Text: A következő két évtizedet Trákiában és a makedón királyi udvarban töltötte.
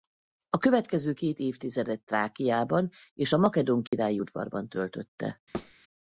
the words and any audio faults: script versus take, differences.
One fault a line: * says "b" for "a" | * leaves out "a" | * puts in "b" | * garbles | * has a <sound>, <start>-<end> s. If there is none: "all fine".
* has a dropout, 3.9-3.9 s
* has a thud, 5.5-5.7 s